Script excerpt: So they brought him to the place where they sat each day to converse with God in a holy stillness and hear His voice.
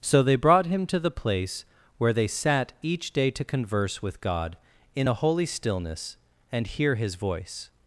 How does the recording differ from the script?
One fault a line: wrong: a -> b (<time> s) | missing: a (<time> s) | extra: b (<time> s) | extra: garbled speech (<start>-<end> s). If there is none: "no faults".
no faults